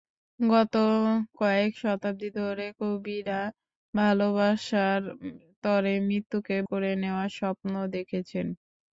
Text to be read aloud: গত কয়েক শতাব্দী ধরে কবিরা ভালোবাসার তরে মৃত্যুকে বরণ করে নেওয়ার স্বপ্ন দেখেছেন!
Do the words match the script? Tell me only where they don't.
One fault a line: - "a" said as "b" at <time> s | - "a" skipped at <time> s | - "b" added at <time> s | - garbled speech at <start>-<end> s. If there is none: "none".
- "বরণ" skipped at 6.6 s